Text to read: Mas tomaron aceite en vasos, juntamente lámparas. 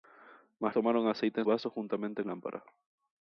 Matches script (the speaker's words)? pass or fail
pass